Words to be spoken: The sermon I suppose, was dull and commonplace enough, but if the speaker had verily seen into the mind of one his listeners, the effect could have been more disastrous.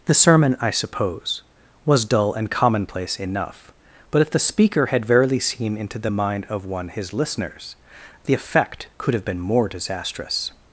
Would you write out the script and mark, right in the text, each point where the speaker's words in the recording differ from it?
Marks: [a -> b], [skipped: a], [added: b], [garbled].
The sermon I suppose, was dull and commonplace enough, but if the speaker had verily seen into the mind of one his listeners, the effect could have been more disastrous.